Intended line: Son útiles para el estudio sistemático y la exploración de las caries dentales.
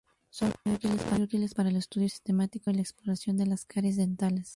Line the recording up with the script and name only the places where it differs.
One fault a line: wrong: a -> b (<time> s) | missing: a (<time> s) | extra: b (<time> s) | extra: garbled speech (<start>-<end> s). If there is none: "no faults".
extra: muy (0.7 s)